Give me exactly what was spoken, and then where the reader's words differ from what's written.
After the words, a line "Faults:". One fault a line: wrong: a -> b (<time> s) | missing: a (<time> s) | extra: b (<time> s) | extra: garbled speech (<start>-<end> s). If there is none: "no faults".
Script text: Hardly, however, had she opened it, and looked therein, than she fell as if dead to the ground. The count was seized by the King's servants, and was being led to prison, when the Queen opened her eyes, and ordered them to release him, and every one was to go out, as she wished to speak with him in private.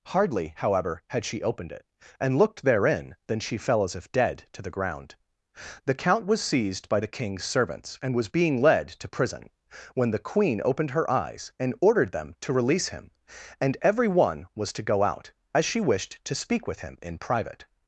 Hardly, however, had she opened it, and looked therein, than she fell as if dead to the ground. The count was seized by the King's servants, and was being led to prison, when the Queen opened her eyes, and ordered them to release him, and every one was to go out, as she wished to speak with him in private.
Faults:
no faults